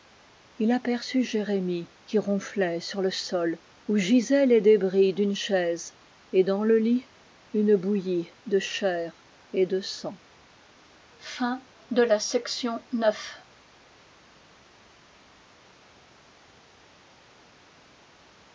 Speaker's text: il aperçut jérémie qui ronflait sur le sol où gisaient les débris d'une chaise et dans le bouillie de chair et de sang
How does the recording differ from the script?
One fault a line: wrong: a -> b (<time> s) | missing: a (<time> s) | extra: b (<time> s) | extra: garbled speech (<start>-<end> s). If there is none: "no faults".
extra: lit une (6.8 s)